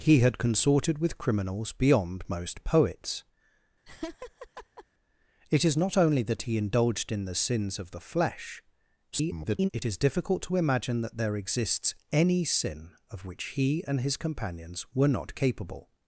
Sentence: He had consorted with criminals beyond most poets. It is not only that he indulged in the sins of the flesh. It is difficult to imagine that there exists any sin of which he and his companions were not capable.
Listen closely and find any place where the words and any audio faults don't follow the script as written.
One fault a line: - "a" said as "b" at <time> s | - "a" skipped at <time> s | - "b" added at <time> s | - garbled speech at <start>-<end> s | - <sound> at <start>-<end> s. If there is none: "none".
- laugh at 3.9-4.8 s
- garbled speech at 9.1-9.7 s